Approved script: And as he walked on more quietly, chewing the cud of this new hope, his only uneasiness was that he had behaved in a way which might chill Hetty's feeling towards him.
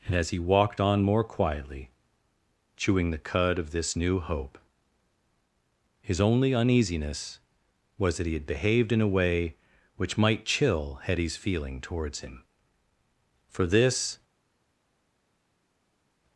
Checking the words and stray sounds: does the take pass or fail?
fail